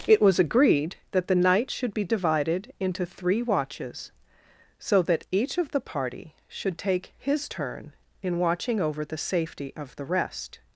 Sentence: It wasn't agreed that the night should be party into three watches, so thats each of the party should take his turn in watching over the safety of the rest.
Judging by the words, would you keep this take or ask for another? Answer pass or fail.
fail